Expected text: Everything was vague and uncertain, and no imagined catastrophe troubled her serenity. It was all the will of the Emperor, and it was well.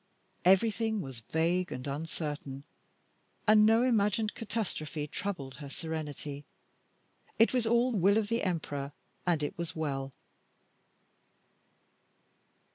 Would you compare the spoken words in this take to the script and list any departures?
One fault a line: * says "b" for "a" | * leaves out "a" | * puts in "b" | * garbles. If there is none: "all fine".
* leaves out "the"